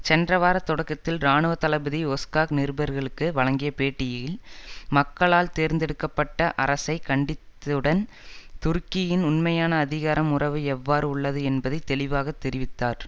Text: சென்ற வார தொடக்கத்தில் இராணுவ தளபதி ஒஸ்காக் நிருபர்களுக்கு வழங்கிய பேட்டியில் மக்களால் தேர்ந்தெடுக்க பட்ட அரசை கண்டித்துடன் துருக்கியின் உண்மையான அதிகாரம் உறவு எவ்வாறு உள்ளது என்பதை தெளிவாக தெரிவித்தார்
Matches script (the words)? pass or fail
pass